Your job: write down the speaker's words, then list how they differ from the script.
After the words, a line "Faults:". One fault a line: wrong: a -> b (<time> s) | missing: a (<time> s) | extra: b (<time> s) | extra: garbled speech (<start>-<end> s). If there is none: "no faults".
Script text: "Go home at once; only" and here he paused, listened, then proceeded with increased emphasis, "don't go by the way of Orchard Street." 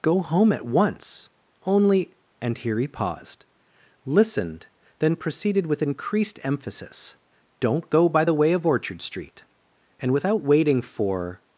"Go home at once; only" and here he paused, listened, then proceeded with increased emphasis, "don't go by the way of Orchard Street." And without waiting for
Faults:
extra: And without waiting for (10.0 s)